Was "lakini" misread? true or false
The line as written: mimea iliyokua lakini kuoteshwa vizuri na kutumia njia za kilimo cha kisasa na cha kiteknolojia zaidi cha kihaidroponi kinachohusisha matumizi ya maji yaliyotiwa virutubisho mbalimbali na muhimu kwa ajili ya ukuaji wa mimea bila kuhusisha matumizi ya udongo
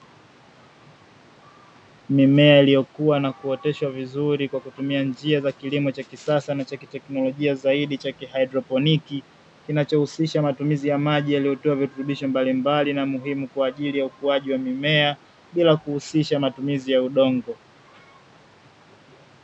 true